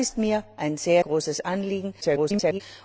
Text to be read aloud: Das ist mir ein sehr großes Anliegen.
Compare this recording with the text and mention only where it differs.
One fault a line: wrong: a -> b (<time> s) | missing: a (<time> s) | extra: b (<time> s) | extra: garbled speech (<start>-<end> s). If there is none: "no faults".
missing: sehr (0.8 s)
extra: garbled speech (2.0-2.6 s)